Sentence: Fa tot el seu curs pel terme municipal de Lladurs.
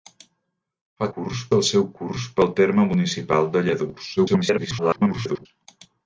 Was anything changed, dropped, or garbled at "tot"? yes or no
yes